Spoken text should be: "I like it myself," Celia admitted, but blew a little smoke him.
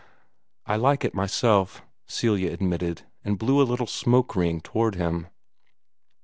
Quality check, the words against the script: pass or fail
fail